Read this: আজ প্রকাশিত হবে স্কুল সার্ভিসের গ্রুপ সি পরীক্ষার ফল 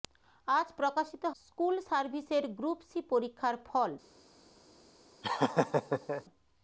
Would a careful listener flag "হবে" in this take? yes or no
yes